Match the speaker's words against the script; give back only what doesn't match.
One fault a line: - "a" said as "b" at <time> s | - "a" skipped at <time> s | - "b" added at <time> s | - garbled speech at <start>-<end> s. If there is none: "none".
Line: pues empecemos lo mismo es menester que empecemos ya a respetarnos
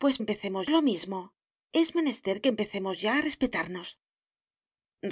none